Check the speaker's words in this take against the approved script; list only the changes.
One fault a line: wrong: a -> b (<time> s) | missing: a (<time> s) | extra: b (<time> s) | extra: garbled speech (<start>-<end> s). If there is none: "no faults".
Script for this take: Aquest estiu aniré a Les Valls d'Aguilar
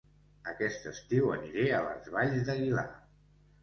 no faults